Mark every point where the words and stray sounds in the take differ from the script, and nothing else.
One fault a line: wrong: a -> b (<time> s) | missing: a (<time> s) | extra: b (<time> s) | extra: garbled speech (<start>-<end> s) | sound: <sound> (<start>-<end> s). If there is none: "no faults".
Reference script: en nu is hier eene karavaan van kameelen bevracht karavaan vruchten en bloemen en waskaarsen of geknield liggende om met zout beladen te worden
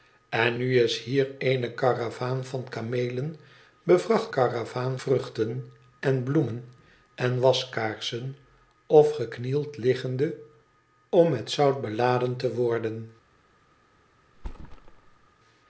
sound: thud (14.3-15.3 s)